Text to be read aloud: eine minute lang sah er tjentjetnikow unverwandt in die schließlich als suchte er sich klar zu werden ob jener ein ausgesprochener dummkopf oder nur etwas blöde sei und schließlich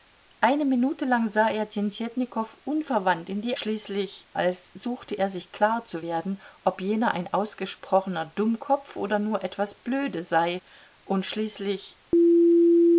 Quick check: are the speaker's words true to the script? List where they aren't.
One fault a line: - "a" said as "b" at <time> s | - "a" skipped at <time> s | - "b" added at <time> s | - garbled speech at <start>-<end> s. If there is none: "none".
none